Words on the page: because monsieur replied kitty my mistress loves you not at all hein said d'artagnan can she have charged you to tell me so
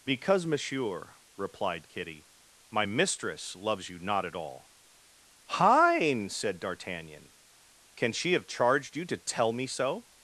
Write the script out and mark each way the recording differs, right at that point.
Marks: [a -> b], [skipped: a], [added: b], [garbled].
because monsieur replied kitty my mistress loves you not at all hein said d'artagnan can she have charged you to tell me so